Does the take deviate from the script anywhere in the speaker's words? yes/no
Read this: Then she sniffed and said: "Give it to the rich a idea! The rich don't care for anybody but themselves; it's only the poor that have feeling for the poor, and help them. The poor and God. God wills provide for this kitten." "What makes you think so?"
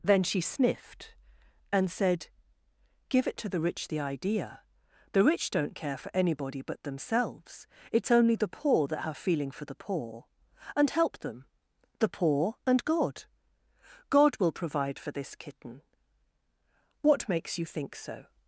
yes